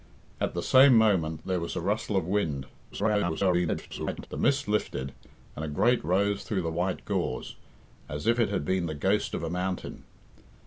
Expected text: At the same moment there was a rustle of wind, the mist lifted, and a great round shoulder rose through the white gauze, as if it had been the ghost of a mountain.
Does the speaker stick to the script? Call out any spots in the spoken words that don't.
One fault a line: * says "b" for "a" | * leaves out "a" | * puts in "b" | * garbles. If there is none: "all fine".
* garbles
* leaves out "round shoulder"